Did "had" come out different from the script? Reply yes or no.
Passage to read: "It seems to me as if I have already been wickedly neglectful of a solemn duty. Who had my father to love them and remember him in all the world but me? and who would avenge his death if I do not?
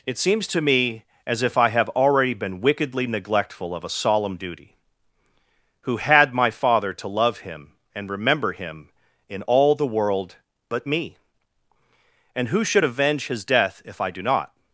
no